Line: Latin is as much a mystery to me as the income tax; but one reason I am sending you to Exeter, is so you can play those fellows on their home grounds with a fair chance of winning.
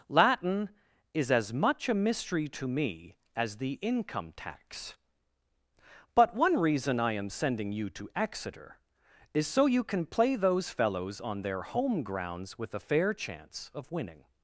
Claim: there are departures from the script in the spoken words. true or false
false